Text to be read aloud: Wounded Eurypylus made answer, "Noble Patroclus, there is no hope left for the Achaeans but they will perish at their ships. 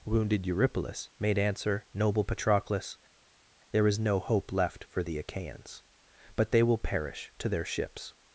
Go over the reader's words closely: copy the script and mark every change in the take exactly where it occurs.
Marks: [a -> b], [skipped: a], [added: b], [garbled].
Wounded Eurypylus made answer, "Noble Patroclus, there is no hope left for the Achaeans but they will perish [at -> to] their ships.